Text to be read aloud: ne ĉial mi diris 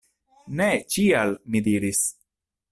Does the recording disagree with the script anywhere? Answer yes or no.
no